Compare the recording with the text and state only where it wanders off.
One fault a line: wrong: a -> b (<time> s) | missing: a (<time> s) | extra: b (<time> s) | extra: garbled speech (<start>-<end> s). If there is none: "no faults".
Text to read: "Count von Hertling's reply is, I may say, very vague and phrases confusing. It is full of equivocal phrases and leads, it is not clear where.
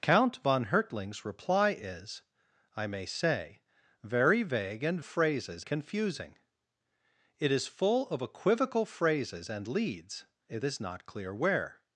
no faults